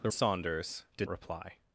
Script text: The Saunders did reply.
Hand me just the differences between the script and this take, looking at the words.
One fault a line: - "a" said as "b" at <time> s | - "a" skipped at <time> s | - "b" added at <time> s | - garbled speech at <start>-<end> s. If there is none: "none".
none